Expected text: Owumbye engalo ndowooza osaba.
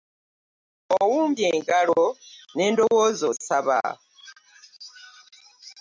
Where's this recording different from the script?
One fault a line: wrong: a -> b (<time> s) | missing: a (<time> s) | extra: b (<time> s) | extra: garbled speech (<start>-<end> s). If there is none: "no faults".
extra: ne (2.6 s)